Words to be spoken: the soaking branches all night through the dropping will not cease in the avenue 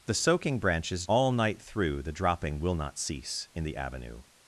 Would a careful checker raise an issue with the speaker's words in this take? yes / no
no